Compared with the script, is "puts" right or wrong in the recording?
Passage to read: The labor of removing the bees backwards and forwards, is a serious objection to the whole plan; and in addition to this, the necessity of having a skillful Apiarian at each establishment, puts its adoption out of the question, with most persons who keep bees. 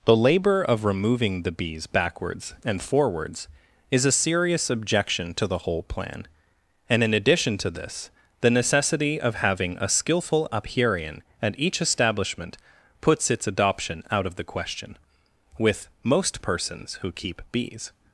right